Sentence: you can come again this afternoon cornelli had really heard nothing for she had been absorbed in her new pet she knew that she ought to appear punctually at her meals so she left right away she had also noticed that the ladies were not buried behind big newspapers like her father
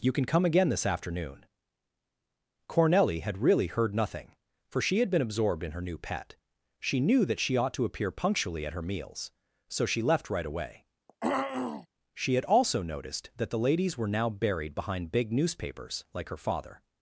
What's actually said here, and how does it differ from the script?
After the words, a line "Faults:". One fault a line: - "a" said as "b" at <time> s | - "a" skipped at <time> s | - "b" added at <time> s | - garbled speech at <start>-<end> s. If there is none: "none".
you can come again this afternoon cornelli had really heard nothing for she had been absorbed in her new pet she knew that she ought to appear punctually at her meals so she left right away she had also noticed that the ladies were now buried behind big newspapers like her father
Faults:
- "not" said as "now" at 14.1 s